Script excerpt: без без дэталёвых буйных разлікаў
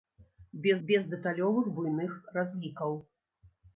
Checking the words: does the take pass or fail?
pass